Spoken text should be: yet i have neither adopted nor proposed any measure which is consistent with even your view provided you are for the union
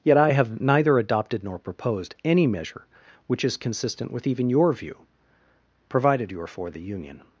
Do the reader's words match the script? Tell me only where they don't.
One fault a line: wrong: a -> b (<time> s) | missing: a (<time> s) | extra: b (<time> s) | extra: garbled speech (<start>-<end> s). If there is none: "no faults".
no faults